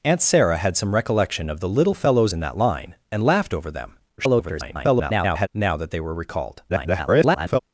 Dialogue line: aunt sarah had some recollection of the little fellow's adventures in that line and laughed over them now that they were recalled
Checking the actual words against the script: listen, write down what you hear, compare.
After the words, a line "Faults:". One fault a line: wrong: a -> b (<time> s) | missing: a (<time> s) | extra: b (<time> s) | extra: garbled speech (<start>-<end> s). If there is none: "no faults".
aunt sarah had some recollection of the little fellow's in that line and laughed over them [garbled] now that they were recalled [garbled]
Faults:
missing: adventures (2.3 s)
extra: garbled speech (4.2-5.5 s)
extra: garbled speech (6.7-7.6 s)